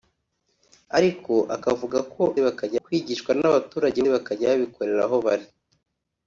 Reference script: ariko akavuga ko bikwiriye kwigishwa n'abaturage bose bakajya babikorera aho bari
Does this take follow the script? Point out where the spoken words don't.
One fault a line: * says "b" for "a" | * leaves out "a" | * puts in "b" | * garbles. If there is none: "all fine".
* says "bakajya" for "bikwiriye"
* leaves out "bose"